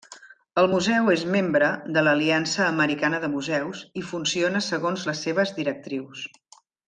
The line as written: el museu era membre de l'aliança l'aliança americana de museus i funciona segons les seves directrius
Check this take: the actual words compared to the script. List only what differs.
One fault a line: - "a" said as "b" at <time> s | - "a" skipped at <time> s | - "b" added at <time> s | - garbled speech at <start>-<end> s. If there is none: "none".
- "era" said as "és" at 1.1 s
- "l'aliança" skipped at 2.6 s